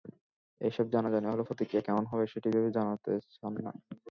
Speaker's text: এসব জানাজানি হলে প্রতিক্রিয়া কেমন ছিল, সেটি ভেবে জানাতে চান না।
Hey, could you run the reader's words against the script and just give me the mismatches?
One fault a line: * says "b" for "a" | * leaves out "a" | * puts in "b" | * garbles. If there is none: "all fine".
* says "হবে" for "ছিল"